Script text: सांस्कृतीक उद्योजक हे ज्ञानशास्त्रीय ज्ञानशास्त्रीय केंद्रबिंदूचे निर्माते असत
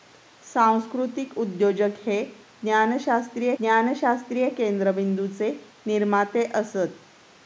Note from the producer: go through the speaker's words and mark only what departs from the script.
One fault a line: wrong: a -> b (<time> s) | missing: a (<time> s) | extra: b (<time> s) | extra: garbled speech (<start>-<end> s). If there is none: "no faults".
no faults